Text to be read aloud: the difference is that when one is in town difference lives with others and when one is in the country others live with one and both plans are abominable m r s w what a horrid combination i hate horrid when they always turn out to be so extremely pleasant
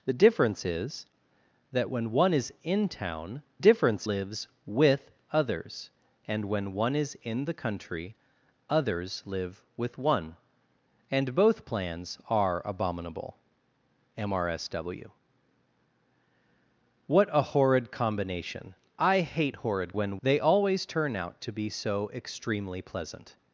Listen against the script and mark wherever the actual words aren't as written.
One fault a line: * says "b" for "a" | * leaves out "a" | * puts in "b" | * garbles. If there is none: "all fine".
all fine